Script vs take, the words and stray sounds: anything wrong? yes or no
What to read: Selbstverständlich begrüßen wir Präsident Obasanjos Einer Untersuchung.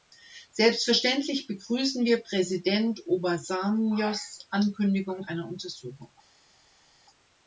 yes